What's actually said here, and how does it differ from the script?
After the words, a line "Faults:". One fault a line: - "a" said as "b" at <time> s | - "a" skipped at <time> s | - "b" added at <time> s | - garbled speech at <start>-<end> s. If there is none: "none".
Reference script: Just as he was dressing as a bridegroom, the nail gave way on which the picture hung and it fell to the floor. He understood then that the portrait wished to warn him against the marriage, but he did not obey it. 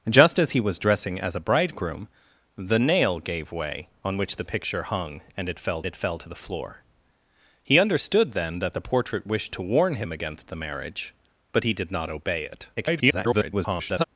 Just as he was dressing as a bridegroom, the nail gave way on which the picture hung and it fell it fell to the floor. He understood then that the portrait wished to warn him against the marriage, but he did not obey it. [garbled]
Faults:
- "it fell" added at 5.8 s
- garbled speech at 12.8-14.0 s